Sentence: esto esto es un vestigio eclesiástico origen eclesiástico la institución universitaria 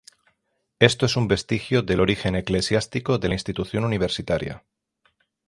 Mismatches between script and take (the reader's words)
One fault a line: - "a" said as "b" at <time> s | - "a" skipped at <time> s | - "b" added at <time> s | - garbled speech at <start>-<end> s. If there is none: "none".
- "esto" skipped at 1.1 s
- "eclesiástico" said as "del" at 1.8 s
- "de" added at 3.2 s